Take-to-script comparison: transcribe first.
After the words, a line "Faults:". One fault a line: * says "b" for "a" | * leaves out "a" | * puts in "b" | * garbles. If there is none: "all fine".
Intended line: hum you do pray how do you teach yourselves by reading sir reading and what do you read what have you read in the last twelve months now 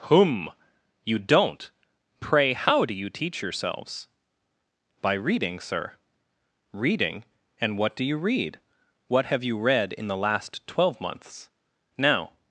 hum you don't pray how do you teach yourselves by reading sir reading and what do you read what have you read in the last twelve months now
Faults:
* says "don't" for "do"